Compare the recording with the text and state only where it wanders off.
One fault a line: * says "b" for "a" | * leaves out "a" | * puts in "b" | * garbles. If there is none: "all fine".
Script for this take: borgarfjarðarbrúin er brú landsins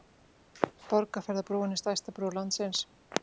* puts in "stærsta"